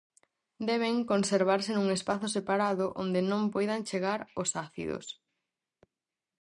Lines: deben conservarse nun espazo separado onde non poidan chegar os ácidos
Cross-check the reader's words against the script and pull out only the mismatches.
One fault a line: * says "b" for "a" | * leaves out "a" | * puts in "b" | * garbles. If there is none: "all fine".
all fine